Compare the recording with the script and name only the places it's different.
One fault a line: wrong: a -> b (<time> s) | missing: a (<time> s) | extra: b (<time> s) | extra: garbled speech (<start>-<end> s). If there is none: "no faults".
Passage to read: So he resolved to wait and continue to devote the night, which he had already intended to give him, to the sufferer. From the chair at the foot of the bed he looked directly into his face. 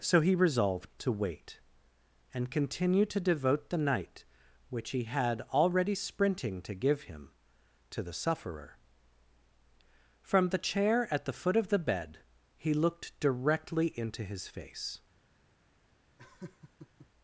wrong: intended -> sprinting (5.9 s)